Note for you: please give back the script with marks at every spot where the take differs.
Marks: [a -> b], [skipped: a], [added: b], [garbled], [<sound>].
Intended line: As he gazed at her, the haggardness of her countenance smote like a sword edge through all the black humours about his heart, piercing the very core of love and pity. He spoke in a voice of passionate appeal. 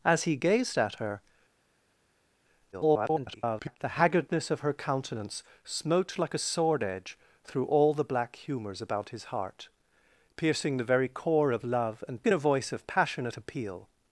As he gazed at her, [garbled] the haggardness of her countenance smote like a sword edge through all the black humours about his heart, piercing the very core of love and [skipped: pity. He spoke] in a voice of passionate appeal.